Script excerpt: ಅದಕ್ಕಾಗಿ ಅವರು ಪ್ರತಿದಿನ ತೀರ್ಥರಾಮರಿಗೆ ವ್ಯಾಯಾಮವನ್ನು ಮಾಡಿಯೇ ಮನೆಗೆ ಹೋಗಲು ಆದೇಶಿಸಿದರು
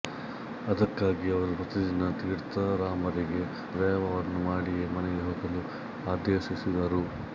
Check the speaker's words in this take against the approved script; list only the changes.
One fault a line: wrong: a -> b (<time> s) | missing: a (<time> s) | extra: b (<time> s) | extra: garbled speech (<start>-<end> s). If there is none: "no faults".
no faults